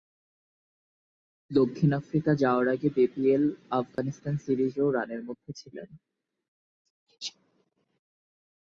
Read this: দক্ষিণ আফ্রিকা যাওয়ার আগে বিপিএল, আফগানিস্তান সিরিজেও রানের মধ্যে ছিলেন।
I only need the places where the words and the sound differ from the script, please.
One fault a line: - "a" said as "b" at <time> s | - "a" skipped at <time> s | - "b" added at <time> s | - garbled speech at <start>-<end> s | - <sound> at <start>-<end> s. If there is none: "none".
- dropout at 4.0-4.0 s